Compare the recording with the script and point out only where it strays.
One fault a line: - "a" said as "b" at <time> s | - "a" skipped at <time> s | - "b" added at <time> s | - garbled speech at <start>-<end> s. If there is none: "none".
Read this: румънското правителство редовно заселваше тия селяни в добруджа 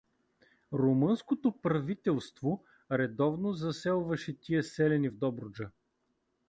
none